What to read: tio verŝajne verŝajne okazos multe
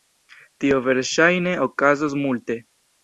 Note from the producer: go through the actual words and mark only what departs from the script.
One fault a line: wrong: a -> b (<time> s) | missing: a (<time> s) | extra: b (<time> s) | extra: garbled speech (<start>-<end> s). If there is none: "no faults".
missing: verŝajne (1.6 s)